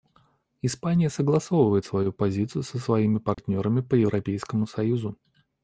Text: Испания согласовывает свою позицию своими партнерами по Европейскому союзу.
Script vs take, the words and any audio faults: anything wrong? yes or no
yes